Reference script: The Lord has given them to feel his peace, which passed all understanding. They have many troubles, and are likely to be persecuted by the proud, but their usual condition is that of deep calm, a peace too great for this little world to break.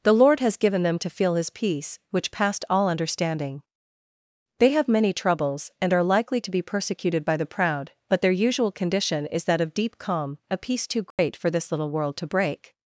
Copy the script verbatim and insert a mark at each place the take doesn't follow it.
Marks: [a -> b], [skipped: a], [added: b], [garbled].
The Lord has given them to feel his peace, which passed all understanding. They have many troubles, and are likely to be persecuted by the proud, but their usual condition is that of deep calm, a peace too great for this little world to break.